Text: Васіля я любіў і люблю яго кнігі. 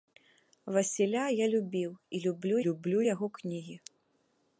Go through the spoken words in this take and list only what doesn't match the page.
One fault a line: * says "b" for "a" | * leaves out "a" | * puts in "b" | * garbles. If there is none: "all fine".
* puts in "люблю"